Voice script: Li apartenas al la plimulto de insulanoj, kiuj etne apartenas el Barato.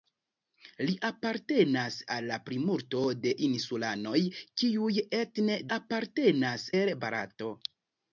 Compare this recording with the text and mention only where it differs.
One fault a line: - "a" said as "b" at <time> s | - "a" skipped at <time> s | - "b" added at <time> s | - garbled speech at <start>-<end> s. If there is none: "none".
none